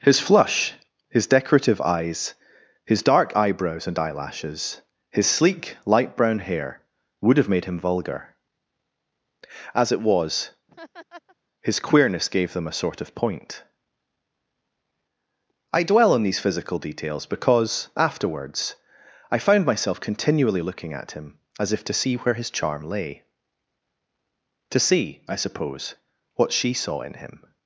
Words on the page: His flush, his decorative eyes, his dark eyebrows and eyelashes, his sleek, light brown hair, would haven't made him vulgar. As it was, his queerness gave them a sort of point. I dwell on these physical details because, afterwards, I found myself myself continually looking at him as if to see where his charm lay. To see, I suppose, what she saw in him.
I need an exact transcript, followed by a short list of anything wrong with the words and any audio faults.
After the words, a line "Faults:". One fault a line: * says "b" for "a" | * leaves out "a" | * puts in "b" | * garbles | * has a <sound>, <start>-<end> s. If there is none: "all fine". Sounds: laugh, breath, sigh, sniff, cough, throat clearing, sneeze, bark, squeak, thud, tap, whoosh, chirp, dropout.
His flush, his decorative eyes, his dark eyebrows and eyelashes, his sleek, light brown hair, would have made him vulgar. As it was, his queerness gave them a sort of point. I dwell on these physical details because, afterwards, I found myself continually looking at him as if to see where his charm lay. To see, I suppose, what she saw in him.
Faults:
* says "have" for "haven't"
* has a laugh, 10.7-11.4 s
* leaves out "myself"